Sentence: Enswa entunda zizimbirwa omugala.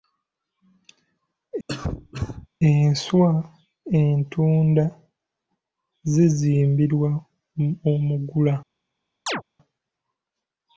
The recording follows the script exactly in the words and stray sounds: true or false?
false